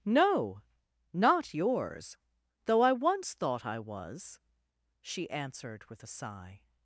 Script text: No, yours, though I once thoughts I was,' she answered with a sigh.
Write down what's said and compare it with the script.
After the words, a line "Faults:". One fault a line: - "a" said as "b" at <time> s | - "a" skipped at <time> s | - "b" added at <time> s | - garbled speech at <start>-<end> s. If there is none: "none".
No, not yours, though I once thought I was,' she answered with a sigh.
Faults:
- "not" added at 1.1 s
- "thoughts" said as "thought" at 3.4 s